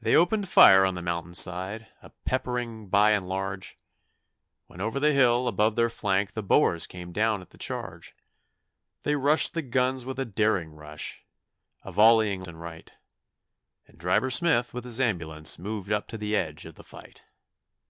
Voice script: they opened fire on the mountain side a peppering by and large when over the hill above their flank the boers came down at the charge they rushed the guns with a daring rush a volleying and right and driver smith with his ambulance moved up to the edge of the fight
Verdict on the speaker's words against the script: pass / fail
pass